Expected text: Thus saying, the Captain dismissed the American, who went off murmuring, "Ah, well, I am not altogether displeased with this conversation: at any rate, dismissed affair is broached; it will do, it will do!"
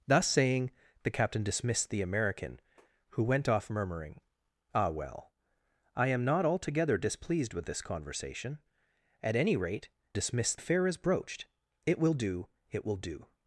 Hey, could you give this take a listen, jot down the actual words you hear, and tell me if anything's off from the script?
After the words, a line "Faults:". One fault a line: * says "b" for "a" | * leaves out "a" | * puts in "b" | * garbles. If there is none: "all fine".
Thus saying, the Captain dismissed the American, who went off murmuring, "Ah, well, I am not altogether displeased with this conversation: at any rate, dismissed affair is broached; it will do, it will do!"
Faults:
all fine